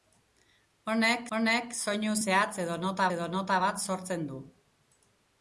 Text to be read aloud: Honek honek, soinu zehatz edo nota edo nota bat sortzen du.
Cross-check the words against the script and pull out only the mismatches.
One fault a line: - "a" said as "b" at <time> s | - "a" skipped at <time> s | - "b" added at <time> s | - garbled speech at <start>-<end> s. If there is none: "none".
none